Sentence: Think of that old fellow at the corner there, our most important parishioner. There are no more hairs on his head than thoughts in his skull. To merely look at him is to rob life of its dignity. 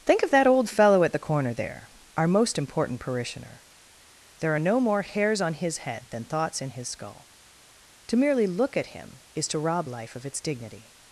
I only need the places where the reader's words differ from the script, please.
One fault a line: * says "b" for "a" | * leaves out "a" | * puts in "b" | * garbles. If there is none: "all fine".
all fine